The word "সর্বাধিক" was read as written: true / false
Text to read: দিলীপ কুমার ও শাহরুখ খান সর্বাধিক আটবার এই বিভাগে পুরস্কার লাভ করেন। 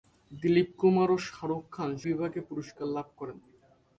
false